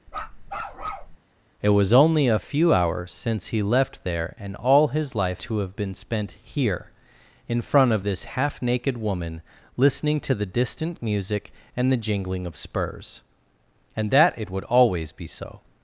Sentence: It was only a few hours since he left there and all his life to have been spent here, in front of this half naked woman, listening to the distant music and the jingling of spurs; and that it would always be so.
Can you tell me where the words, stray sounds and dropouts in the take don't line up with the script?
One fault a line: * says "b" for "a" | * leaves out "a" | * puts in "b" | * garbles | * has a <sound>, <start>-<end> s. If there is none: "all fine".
* has a bark, 0.1-1.2 s